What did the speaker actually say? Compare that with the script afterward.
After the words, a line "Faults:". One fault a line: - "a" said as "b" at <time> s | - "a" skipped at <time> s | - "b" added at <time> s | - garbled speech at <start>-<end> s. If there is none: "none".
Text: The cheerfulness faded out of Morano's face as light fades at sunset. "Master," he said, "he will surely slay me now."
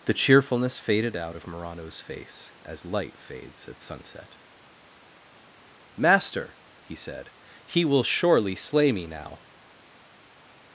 The cheerfulness faded out of Morano's face as light fades at sunset. "Master," he said, "he will surely slay me now."
Faults:
none